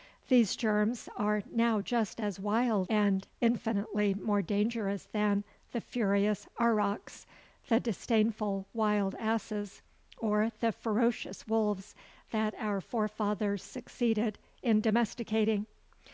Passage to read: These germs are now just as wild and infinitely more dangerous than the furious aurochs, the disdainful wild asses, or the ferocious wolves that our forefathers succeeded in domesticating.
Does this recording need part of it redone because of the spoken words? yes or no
no